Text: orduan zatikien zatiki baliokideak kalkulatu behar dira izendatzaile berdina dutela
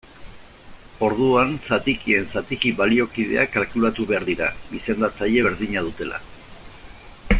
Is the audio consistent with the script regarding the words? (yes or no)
yes